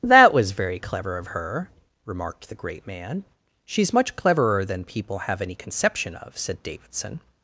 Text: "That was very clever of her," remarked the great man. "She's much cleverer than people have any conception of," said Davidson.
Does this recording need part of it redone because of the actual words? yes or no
no